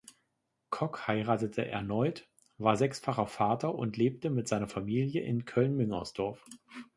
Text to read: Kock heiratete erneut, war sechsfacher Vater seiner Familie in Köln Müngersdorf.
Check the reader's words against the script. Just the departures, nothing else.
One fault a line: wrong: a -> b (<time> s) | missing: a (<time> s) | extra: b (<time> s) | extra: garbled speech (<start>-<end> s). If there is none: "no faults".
extra: und lebte mit (3.8 s)